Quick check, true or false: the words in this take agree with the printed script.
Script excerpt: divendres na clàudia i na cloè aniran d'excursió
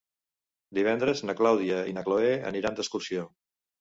true